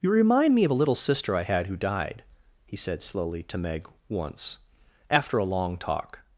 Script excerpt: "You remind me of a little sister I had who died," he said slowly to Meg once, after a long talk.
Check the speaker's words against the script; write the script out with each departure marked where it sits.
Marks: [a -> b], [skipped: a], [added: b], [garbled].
"You remind me of a little sister I had who died," he said slowly to Meg once, after a long talk.